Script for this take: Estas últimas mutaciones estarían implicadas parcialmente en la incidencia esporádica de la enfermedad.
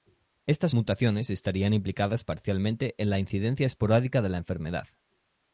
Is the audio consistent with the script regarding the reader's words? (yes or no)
no